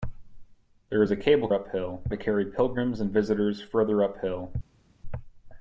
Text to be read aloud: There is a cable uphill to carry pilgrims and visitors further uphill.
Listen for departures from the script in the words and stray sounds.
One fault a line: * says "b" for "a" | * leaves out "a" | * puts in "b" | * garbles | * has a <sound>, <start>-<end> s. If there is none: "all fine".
all fine